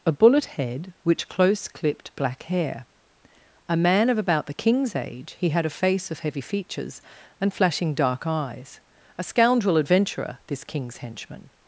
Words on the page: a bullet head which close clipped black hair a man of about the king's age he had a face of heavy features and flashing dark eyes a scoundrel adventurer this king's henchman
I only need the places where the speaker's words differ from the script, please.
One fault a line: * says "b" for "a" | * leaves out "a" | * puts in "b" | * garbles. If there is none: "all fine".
all fine